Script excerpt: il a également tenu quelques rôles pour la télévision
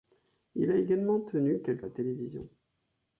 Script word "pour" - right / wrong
wrong